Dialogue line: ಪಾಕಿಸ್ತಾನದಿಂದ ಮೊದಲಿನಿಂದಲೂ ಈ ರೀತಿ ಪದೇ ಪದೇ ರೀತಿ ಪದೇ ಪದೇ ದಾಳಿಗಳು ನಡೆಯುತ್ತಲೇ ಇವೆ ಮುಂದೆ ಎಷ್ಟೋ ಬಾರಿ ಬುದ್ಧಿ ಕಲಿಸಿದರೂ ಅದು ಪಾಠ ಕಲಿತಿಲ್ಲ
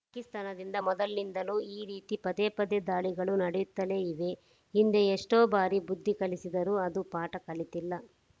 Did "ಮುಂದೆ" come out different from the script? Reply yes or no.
yes